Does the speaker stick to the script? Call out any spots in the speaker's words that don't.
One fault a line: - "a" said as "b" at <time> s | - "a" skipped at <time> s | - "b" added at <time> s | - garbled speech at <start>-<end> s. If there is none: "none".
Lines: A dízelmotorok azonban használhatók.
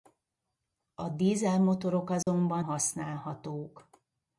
none